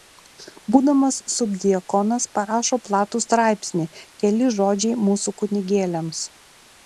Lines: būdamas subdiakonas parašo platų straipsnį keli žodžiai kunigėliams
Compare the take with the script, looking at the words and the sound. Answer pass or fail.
fail